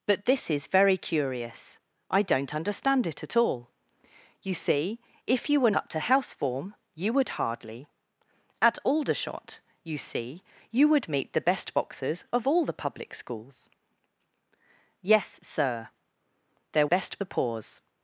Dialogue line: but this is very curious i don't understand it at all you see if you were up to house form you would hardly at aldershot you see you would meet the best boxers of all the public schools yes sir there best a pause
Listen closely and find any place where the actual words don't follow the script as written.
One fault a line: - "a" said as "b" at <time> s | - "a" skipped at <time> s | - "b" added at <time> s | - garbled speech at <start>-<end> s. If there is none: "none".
none